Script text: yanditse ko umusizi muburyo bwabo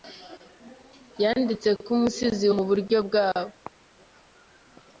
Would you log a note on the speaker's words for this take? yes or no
no